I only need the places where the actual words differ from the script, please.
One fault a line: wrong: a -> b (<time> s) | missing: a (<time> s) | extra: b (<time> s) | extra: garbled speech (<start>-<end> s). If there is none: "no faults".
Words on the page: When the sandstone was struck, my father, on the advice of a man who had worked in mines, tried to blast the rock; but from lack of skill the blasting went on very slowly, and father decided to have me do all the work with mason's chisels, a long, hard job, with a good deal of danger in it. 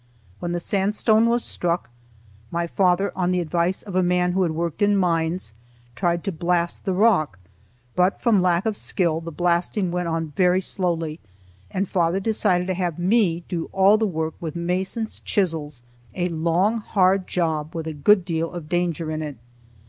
no faults